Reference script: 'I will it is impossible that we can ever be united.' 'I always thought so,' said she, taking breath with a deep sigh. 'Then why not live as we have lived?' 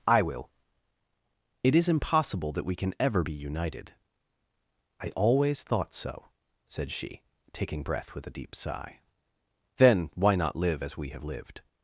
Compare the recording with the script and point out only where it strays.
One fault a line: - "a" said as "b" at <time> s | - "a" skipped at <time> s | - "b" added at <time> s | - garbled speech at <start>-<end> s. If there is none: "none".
none